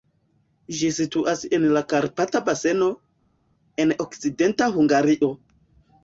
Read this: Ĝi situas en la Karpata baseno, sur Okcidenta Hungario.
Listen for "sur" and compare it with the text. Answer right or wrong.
wrong